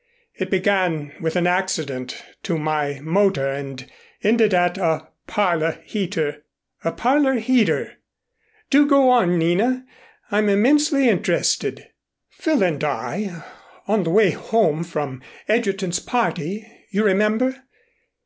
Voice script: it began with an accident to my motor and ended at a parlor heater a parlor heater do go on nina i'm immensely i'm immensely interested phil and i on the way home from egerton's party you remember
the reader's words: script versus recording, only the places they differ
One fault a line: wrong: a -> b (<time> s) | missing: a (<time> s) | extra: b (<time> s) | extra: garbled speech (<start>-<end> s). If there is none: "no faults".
missing: i'm immensely (11.1 s)